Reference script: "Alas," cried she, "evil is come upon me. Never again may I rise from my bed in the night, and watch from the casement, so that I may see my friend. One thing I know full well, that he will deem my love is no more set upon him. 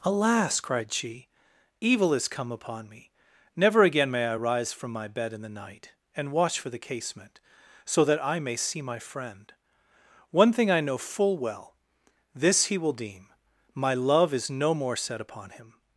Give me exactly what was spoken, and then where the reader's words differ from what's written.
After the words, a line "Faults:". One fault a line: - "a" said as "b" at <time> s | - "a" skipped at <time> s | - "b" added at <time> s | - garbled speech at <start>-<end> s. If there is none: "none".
"Alas," cried she, "evil is come upon me. Never again may I rise from my bed in the night, and watch for the casement, so that I may see my friend. One thing I know full well, this he will deem my love is no more set upon him.
Faults:
- "from" said as "for" at 6.6 s
- "that" said as "this" at 12.4 s